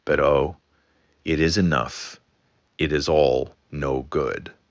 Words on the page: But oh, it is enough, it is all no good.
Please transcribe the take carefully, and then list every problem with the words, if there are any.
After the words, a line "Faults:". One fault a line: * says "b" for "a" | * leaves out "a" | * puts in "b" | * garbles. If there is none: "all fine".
But oh, it is enough, it is all no good.
Faults:
all fine